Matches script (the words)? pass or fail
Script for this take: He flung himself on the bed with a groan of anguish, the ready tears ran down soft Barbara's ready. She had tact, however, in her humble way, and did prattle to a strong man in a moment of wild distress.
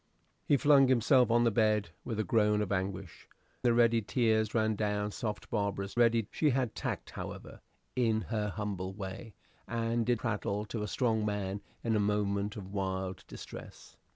pass